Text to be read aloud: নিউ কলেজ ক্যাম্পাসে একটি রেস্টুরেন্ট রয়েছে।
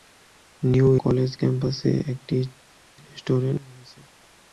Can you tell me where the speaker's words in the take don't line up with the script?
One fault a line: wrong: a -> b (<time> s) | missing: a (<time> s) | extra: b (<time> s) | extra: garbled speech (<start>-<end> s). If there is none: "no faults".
no faults